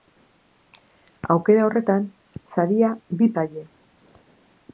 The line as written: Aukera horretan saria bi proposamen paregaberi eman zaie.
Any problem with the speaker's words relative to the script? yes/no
yes